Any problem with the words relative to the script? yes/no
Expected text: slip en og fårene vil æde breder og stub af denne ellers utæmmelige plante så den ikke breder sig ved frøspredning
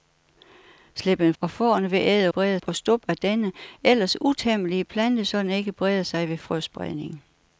no